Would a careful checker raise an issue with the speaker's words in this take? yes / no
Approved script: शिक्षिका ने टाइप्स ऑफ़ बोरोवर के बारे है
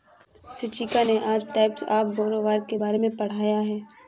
yes